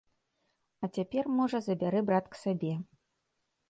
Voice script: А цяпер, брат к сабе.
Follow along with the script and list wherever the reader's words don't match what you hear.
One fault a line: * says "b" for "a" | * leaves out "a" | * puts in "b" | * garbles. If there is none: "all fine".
* puts in "можа забярэ"